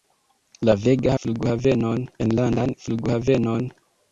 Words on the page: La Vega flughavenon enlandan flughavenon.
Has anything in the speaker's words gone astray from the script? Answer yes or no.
no